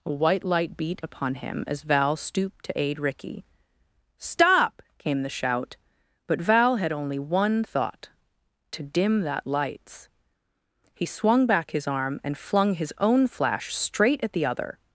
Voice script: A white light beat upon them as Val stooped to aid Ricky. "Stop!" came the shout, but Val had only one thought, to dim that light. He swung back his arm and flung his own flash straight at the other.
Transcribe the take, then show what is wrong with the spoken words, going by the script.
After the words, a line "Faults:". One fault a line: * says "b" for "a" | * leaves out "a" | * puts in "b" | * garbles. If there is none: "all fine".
A white light beat upon him as Val stooped to aid Ricky. "Stop!" came the shout, but Val had only one thought, to dim that lights. He swung back his arm and flung his own flash straight at the other.
Faults:
* says "him" for "them"
* says "lights" for "light"